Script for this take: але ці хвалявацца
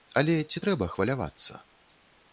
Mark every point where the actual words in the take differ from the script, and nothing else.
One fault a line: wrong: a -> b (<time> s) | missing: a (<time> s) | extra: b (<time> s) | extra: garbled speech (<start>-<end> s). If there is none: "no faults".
extra: трэба (0.6 s)